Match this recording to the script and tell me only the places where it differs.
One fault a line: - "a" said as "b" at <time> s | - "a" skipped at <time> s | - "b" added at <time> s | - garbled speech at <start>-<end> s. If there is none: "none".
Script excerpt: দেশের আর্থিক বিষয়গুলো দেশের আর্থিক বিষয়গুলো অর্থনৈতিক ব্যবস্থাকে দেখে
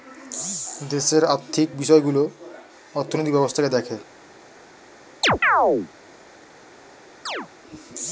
- "দেশের আর্থিক বিষয়গুলো" skipped at 2.2 s